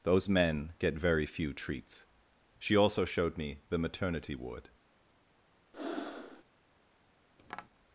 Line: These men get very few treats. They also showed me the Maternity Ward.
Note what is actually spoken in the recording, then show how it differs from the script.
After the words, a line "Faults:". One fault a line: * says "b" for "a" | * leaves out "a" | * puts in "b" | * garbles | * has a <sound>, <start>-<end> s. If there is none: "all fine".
Those men get very few treats. She also showed me the Maternity Ward.
Faults:
* says "Those" for "These"
* says "She" for "They"
* has a breath, 5.7-6.4 s
* has a tap, 7.4-7.7 s